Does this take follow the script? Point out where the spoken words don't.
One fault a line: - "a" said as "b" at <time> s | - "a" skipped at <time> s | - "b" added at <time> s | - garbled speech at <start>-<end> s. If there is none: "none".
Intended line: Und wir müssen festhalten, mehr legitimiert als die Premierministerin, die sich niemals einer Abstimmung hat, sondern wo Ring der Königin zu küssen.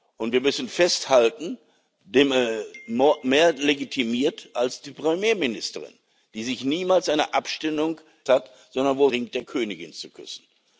none